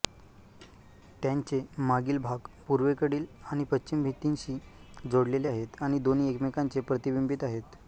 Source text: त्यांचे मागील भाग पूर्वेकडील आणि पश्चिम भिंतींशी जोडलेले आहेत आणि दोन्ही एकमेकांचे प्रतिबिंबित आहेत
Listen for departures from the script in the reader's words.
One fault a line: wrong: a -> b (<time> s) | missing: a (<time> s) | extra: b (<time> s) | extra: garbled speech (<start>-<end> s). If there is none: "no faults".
no faults